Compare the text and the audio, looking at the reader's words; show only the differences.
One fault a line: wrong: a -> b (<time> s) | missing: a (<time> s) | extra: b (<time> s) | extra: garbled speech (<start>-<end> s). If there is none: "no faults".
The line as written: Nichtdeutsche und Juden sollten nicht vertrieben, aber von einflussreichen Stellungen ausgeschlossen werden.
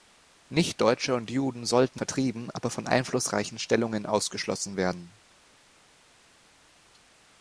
missing: nicht (2.0 s)